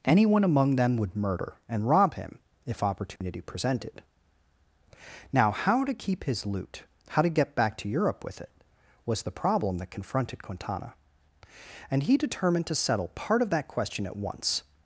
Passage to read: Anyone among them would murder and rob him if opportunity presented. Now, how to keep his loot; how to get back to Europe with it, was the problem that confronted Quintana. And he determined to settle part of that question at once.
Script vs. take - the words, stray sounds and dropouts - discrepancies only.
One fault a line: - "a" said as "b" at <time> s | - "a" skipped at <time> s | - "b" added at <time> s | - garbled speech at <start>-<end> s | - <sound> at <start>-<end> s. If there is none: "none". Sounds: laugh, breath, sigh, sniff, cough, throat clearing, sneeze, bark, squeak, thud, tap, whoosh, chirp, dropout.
- dropout at 3.2-3.2 s